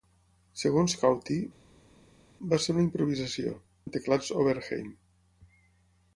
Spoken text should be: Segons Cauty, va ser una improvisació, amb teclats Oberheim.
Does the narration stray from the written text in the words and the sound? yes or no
no